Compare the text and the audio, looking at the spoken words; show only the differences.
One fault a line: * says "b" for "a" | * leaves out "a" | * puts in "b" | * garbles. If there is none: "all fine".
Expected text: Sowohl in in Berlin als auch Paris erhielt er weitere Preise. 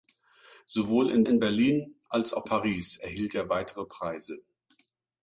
all fine